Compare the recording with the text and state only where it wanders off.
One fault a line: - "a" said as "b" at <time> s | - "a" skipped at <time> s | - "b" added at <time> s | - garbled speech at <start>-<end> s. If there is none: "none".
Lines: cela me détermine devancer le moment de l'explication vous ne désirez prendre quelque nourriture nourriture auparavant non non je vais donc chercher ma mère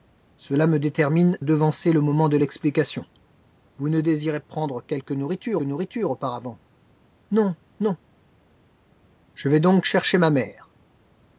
none